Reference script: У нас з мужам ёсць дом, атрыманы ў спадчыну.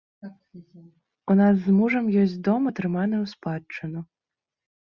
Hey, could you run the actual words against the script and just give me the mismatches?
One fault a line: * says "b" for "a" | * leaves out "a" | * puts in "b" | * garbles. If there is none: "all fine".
all fine